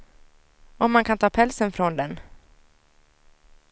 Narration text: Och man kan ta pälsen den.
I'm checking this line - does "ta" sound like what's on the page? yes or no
yes